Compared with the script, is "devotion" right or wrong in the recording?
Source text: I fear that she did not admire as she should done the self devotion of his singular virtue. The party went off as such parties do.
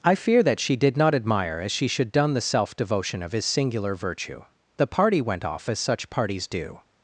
right